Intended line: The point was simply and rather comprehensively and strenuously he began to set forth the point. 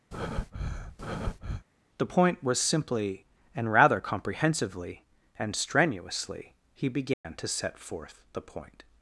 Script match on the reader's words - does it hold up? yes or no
yes